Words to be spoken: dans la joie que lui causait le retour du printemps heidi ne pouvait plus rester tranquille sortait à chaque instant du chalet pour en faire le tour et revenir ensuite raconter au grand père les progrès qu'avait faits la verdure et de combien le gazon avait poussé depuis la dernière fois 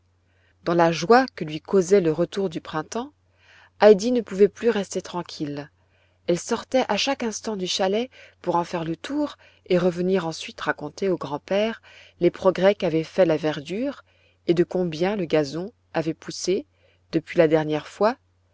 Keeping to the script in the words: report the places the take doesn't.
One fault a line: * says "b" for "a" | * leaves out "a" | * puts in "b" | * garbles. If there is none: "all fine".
* puts in "elle"